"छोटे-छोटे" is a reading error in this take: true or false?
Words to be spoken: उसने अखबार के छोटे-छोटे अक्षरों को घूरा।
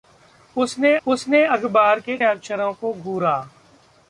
true